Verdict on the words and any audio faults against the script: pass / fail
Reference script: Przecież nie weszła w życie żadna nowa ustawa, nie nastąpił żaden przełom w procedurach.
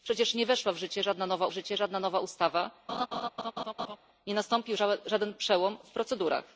fail